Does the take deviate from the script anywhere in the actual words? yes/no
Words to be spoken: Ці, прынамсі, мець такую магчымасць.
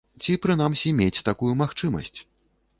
no